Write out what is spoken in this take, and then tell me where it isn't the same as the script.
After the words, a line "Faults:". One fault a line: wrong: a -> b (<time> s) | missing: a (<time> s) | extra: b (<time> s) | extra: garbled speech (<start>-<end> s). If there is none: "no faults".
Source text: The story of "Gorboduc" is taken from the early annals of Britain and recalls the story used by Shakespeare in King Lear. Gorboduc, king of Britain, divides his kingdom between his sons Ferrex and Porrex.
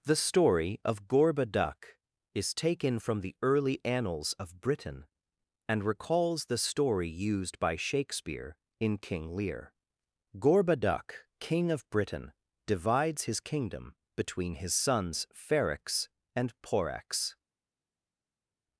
The story of "Gorboduc" is taken from the early annals of Britain and recalls the story used by Shakespeare in King Lear. Gorboduc, king of Britain, divides his kingdom between his sons Ferrex and Porrex.
Faults:
no faults